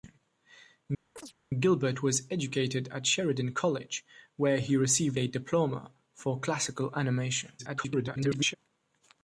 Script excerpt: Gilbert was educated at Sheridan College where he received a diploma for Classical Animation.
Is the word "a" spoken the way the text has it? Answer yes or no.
yes